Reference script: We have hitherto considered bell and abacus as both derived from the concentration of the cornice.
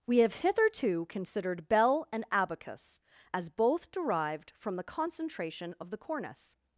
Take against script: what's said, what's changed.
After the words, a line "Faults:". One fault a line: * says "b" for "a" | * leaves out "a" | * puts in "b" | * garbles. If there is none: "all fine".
We have hitherto considered bell and abacus as both derived from the concentration of the cornice.
Faults:
all fine